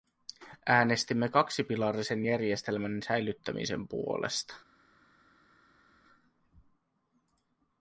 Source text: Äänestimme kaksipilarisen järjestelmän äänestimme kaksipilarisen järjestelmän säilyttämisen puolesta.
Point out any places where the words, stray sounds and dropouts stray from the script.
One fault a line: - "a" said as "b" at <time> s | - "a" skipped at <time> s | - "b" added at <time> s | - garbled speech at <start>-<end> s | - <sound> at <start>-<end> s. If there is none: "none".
- "äänestimme kaksipilarisen järjestelmän" skipped at 3.0 s